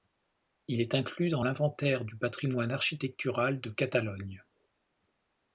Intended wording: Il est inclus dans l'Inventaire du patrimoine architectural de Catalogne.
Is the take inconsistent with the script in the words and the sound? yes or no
no